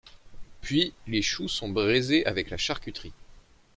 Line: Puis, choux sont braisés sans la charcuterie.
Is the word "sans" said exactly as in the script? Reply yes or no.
no